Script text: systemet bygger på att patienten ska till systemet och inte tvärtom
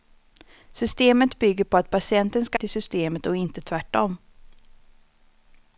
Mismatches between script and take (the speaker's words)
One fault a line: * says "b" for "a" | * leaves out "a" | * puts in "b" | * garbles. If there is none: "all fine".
all fine